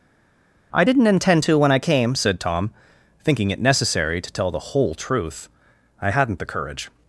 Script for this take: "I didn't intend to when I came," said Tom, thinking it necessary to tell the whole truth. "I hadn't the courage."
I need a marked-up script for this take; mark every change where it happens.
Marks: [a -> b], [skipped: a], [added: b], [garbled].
"I didn't intend to when I came," said Tom, thinking it necessary to tell the whole truth. "I hadn't the courage."